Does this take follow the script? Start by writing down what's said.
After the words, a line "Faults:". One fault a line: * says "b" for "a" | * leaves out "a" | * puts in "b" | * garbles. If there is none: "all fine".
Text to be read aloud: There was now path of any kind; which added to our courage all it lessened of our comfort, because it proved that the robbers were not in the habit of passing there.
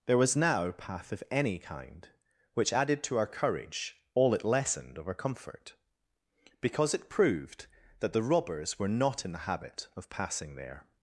There was now path of any kind; which added to our courage all it lessened of our comfort, because it proved that the robbers were not in the habit of passing there.
Faults:
all fine